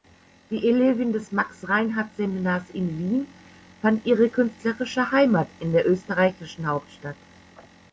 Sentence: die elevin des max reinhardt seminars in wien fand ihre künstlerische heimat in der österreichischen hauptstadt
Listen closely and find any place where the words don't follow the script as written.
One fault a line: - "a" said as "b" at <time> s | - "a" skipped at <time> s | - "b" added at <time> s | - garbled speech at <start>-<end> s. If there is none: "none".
none